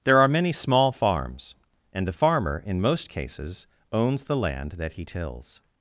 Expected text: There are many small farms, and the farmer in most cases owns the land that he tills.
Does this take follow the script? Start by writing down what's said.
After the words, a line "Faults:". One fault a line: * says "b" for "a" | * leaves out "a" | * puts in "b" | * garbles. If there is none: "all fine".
There are many small farms, and the farmer in most cases owns the land that he tills.
Faults:
all fine